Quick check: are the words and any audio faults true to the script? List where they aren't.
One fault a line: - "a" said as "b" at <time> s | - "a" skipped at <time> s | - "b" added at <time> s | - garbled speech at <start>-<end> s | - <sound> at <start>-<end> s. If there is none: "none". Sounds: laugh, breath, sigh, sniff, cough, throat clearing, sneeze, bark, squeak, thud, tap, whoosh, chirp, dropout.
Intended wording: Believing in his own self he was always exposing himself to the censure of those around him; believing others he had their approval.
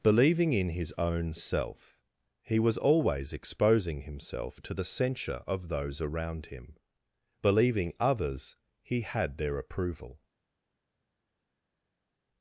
none